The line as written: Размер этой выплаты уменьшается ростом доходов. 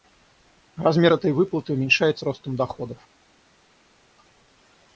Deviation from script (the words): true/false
false